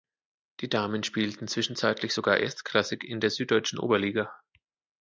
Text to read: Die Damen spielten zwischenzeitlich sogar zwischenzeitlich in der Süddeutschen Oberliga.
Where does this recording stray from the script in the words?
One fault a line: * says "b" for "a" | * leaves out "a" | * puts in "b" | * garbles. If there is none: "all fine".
* says "erstklassig" for "zwischenzeitlich"